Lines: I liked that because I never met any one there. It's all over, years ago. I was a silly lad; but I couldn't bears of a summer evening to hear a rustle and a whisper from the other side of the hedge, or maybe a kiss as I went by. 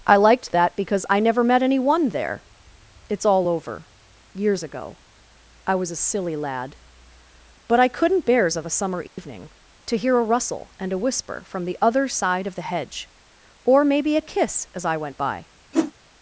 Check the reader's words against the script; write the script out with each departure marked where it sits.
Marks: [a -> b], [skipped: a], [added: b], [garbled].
I liked that because I never met any one there. It's all over, years ago. I was a silly lad; but I couldn't bears of a summer evening to hear a rustle and a whisper from the other side of the hedge, or maybe a kiss as I went by.